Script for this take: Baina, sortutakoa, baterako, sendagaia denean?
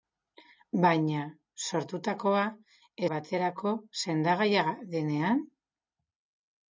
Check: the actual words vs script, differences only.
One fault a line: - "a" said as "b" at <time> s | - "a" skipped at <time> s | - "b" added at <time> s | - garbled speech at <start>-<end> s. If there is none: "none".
none